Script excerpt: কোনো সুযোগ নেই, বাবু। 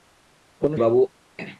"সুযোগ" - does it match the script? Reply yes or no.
no